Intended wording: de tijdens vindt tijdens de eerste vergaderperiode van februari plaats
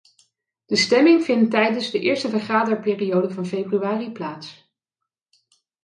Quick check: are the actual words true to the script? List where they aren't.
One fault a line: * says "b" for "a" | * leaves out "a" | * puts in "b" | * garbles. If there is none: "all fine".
* says "stemming" for "tijdens"